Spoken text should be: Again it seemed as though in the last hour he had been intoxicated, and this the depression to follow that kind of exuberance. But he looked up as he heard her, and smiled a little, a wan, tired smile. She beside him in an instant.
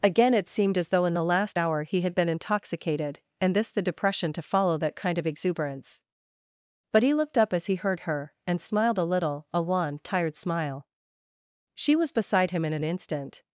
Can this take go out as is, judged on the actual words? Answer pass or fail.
fail